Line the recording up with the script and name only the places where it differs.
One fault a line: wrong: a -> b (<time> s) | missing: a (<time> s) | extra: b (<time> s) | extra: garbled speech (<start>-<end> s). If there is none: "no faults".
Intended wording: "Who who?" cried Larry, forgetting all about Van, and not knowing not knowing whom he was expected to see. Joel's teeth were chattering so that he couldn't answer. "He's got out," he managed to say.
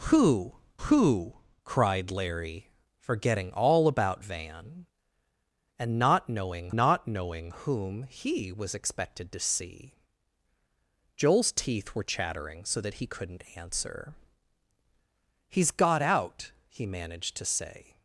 no faults